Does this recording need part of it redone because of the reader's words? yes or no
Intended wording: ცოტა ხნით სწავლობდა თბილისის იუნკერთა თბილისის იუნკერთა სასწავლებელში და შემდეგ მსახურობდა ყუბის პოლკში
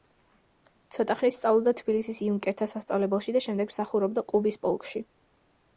yes